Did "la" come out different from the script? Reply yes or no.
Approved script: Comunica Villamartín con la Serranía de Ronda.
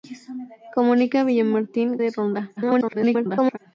yes